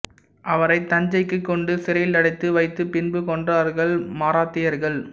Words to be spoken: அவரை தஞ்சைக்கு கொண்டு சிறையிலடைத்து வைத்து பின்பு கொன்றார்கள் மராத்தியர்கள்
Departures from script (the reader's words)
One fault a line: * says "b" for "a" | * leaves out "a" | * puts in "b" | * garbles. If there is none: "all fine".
all fine